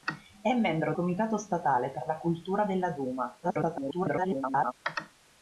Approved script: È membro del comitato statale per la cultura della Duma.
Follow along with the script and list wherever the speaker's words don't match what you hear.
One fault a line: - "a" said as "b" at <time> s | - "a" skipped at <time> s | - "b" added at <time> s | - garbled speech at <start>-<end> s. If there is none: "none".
- "del" skipped at 0.9 s
- garbled speech at 3.4-4.7 s